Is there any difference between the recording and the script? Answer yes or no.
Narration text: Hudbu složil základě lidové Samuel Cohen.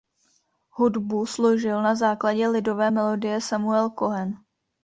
yes